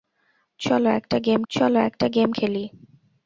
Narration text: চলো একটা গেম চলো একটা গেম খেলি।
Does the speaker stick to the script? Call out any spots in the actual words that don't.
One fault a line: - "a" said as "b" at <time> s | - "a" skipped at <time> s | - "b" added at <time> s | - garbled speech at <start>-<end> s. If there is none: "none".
none